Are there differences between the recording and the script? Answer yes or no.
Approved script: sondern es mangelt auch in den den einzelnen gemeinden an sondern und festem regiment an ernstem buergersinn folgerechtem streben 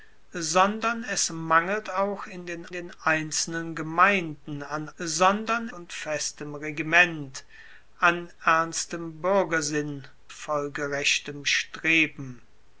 no